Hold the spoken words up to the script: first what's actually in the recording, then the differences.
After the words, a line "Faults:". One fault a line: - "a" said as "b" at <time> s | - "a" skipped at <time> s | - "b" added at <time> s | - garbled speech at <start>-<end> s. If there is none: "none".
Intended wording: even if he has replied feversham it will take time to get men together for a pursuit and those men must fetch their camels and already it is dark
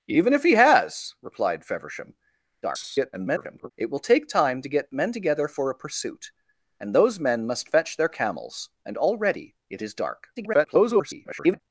even if he has replied feversham [garbled] it will take time to get men together for a pursuit and those men must fetch their camels and already it is dark [garbled]
Faults:
- garbled speech at 2.6-3.7 s
- garbled speech at 10.4-11.6 s